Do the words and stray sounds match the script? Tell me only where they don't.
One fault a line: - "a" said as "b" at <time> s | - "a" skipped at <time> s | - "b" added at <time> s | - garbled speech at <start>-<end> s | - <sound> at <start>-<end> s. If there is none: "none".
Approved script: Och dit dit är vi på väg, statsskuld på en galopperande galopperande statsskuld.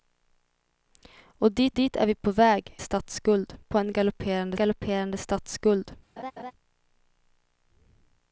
- laugh at 6.2-6.5 s